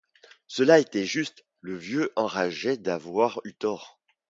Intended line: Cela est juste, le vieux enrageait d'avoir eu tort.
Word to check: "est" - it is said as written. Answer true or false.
false